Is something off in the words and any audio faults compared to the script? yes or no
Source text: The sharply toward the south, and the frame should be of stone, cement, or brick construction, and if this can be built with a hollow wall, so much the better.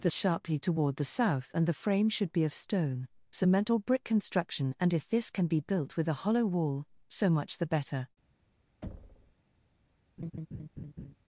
yes